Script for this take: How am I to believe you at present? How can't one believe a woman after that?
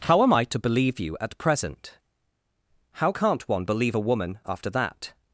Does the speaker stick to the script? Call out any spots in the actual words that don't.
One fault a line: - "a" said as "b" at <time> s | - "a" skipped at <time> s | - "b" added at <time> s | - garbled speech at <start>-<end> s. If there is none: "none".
none